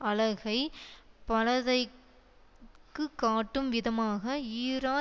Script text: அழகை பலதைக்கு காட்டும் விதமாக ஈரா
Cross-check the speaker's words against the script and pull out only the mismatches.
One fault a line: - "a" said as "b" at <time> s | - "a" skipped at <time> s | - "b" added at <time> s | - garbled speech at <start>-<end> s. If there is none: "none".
none